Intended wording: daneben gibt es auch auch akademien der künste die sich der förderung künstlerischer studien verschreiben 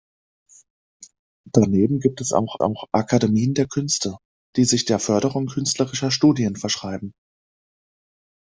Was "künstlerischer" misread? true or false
false